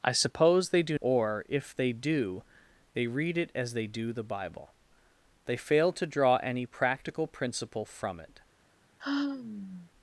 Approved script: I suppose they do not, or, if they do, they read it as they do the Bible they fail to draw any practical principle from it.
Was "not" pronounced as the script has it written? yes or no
no